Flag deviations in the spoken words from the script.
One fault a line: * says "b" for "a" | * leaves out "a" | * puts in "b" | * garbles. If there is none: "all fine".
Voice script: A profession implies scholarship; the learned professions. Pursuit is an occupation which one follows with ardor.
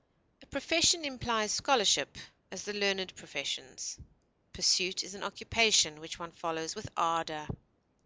* puts in "as"